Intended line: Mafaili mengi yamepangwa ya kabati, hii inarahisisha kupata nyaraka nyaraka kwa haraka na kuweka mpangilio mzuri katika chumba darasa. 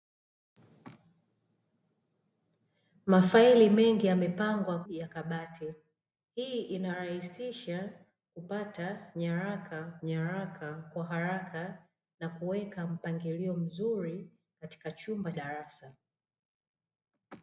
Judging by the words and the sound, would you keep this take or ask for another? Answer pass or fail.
pass